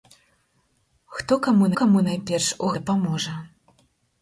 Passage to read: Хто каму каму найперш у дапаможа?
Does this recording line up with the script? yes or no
yes